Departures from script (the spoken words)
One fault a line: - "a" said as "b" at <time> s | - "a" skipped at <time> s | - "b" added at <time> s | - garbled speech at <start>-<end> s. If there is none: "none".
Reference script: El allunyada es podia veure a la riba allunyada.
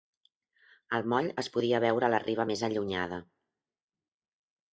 - "allunyada" said as "moll" at 1.1 s
- "més" added at 2.5 s